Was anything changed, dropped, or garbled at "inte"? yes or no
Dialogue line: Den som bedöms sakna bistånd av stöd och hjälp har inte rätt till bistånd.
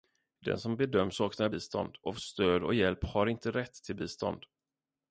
no